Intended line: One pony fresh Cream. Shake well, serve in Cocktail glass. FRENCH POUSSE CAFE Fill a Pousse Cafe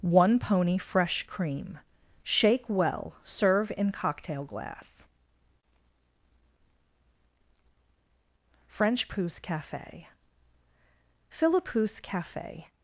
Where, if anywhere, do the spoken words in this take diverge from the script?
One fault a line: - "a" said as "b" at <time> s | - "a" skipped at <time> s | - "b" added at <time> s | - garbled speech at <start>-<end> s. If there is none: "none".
none